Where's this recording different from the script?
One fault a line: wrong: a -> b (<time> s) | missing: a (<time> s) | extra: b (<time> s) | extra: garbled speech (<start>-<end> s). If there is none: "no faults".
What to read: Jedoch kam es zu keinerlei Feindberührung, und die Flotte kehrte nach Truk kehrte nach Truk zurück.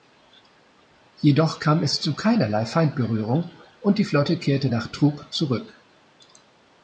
missing: kehrte nach Truk (5.3 s)